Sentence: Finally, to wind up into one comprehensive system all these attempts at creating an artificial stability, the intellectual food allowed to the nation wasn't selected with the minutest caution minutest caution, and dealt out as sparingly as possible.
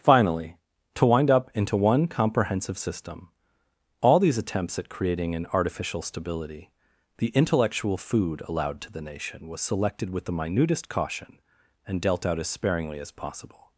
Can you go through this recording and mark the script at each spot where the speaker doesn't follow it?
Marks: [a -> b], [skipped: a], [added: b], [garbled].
Finally, to wind up into one comprehensive system all these attempts at creating an artificial stability, the intellectual food allowed to the nation [wasn't -> was] selected with the minutest caution [skipped: minutest caution,] and dealt out as sparingly as possible.